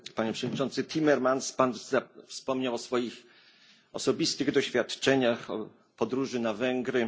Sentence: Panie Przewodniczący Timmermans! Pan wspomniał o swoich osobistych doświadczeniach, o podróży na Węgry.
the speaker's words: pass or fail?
pass